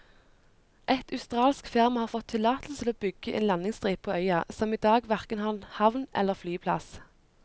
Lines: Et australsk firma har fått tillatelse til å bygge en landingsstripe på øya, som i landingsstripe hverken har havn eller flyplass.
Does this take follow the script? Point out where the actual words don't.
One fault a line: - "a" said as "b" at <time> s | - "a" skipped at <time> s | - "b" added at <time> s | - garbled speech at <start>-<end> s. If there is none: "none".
- "landingsstripe" said as "dag" at 4.9 s